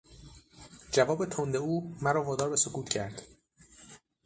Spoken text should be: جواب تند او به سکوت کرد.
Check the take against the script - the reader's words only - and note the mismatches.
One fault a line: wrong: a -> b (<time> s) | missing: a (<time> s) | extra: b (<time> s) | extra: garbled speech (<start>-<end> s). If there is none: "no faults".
extra: مرا وادار (2.0 s)